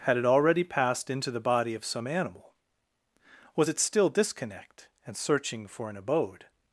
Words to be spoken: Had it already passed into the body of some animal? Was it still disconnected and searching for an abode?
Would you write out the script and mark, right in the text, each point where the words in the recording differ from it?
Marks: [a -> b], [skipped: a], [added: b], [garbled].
Had it already passed into the body of some animal? Was it still [disconnected -> disconnect] and searching for an abode?